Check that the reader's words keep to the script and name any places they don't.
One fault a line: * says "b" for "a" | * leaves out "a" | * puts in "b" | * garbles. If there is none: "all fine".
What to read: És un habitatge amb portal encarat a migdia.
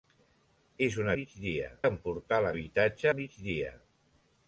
* says "migdia" for "habitatge"
* says "habitatge" for "encarat"